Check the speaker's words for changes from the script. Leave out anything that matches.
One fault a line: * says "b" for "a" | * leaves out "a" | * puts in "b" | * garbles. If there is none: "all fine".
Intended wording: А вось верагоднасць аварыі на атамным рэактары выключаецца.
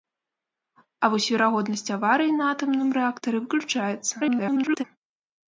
* garbles